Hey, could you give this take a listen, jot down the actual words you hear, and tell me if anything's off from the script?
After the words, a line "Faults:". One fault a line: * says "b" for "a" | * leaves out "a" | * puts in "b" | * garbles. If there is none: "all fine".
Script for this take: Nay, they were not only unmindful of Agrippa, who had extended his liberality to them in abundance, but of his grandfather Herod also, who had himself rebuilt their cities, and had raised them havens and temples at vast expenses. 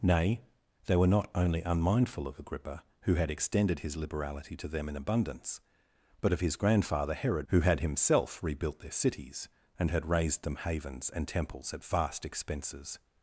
Nay, they were not only unmindful of Agrippa, who had extended his liberality to them in abundance, but of his grandfather Herod who had himself rebuilt their cities, and had raised them havens and temples at vast expenses.
Faults:
* leaves out "also"